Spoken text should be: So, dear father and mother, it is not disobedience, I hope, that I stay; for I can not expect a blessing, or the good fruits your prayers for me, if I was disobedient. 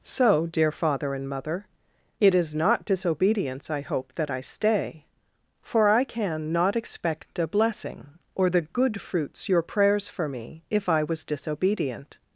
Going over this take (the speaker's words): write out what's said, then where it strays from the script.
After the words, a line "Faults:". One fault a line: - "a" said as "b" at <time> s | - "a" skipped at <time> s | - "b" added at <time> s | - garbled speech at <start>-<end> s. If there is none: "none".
So, dear father and mother, it is not disobedience, I hope, that I stay; for I can not expect a blessing, or the good fruits your prayers for me, if I was disobedient.
Faults:
none